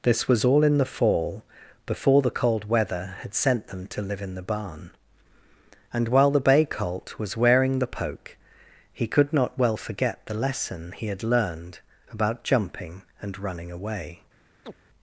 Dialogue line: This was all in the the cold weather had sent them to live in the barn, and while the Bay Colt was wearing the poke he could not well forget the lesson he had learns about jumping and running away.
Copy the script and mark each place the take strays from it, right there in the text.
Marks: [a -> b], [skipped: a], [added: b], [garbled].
This was all in the [added: fall before] the cold weather had sent them to live in the barn, and while the Bay Colt was wearing the poke he could not well forget the lesson he had [learns -> learned] about jumping and running away.